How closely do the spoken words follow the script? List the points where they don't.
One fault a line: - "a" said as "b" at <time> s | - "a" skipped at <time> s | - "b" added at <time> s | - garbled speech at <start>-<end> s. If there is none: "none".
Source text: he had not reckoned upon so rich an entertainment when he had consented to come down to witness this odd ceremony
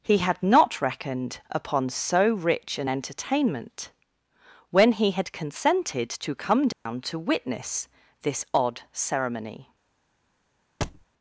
none